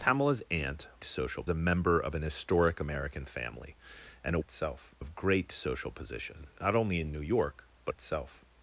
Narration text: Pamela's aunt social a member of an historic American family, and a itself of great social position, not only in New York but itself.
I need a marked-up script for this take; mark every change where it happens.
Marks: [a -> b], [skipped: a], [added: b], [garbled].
Pamela's aunt social a member of an historic American family, and a itself of great social position, not only in New York but itself.